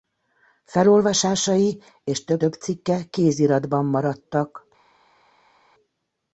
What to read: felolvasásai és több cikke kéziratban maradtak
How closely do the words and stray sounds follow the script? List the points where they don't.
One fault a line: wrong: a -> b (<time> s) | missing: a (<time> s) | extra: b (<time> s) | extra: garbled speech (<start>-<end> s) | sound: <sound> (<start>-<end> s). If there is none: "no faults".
extra: több (2.3 s)